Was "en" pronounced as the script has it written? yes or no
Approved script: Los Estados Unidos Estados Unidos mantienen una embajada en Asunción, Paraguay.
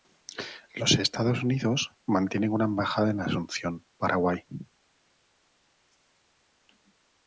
yes